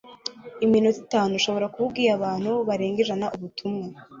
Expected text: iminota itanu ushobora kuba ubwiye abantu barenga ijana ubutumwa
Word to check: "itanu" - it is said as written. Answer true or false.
true